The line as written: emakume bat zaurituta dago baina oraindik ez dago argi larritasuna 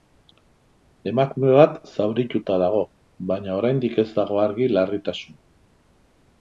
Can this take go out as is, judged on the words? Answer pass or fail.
pass